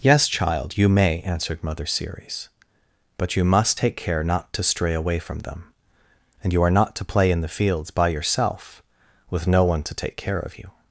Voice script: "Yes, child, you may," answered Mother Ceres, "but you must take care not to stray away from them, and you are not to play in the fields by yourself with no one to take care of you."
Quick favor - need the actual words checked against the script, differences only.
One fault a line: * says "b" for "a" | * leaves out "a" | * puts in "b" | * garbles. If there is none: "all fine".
all fine